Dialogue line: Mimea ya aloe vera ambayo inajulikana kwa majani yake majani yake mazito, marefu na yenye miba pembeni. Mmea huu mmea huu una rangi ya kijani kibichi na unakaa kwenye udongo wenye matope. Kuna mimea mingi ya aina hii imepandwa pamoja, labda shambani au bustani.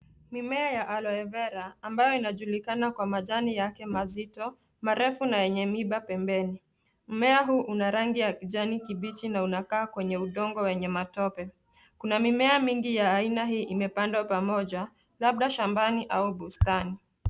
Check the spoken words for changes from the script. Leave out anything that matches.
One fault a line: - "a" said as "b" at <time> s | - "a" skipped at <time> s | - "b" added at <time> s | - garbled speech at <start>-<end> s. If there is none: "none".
- "majani yake" skipped at 3.9 s
- "mmea huu" skipped at 7.6 s